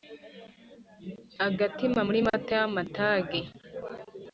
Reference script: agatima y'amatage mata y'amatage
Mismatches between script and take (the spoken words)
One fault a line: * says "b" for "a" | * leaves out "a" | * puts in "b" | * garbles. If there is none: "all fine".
* says "muri" for "y'amatage"